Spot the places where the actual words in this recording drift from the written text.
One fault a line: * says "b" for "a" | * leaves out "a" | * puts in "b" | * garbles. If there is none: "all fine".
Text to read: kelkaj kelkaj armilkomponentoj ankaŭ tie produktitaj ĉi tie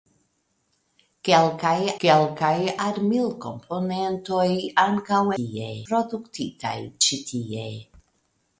all fine